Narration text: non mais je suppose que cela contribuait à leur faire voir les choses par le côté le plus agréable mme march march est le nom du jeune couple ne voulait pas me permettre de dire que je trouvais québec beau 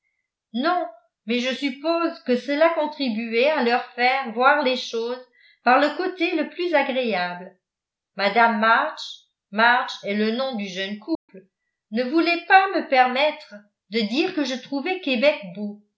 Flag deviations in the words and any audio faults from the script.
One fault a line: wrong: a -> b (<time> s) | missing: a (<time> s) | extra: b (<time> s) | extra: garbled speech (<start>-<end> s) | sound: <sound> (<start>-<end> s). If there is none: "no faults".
sound: dropout (11.1-11.3 s)